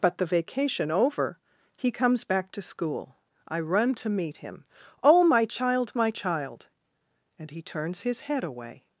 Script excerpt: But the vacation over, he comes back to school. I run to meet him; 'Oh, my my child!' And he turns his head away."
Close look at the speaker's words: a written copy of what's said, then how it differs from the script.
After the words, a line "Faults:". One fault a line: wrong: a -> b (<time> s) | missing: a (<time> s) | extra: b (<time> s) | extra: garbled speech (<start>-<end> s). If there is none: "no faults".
But the vacation over, he comes back to school. I run to meet him; 'Oh, my child, my child!' And he turns his head away."
Faults:
extra: child (5.5 s)